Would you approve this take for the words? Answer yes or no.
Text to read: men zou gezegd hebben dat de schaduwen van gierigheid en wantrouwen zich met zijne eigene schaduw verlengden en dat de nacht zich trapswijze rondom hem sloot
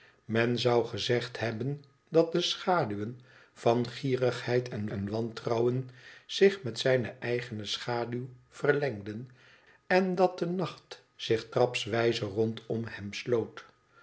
no